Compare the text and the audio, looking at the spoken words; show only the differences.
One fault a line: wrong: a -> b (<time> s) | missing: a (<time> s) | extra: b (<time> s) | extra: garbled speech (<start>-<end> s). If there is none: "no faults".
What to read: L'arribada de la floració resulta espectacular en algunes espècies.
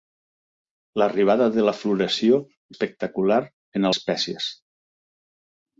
missing: resulta (2.4 s)
missing: algunes (3.9 s)